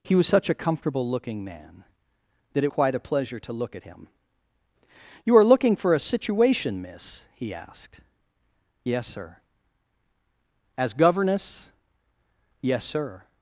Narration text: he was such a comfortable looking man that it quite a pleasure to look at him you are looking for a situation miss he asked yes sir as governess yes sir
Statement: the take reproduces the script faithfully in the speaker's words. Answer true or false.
true